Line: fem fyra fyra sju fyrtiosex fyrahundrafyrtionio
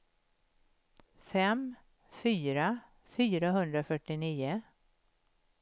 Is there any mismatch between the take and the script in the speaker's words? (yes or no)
yes